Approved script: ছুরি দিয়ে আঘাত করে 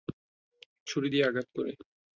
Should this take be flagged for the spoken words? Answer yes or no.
no